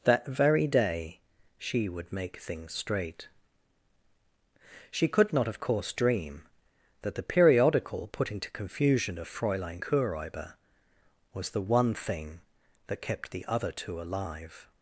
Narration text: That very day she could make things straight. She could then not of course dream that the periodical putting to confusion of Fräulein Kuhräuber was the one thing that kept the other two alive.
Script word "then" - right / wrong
wrong